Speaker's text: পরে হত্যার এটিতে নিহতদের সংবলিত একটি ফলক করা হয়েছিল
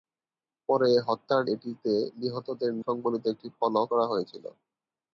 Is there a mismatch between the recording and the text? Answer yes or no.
no